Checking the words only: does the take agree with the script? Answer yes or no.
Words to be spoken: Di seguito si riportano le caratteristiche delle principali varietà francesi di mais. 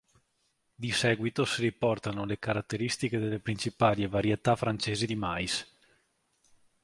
yes